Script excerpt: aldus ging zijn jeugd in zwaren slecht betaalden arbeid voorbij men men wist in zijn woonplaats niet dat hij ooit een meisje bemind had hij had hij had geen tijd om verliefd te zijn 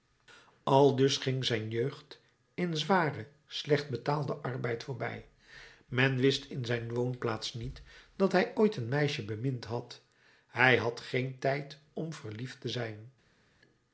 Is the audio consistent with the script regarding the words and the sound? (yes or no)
no